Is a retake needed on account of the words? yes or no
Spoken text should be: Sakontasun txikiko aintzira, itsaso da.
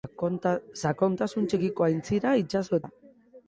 no